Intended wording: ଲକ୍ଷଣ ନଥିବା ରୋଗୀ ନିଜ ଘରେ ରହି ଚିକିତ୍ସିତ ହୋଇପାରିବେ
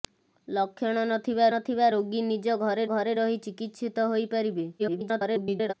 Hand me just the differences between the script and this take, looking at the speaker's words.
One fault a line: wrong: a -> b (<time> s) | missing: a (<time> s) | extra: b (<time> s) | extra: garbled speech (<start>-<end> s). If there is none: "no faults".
extra: ନଥିବା (1.5 s)
extra: ଘରେ (2.9 s)
extra: garbled speech (4.8-5.7 s)